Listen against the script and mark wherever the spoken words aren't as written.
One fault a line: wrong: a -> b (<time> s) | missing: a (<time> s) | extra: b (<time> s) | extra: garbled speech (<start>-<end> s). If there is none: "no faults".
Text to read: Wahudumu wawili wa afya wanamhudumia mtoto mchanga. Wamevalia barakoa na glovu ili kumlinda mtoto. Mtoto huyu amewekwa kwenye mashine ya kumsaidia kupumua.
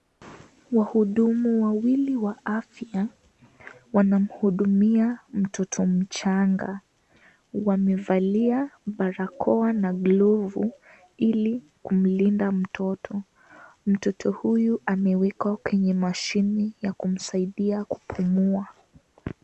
no faults